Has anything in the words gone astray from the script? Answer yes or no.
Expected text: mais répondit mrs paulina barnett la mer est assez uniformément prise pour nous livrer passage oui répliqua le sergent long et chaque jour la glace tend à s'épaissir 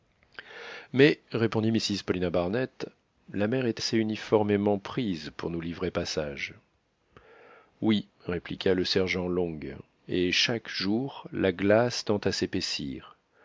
no